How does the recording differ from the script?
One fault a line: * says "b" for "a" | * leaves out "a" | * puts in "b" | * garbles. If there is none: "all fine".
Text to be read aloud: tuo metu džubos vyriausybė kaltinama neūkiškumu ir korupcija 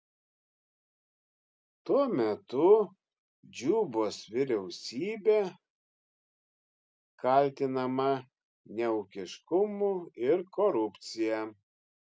all fine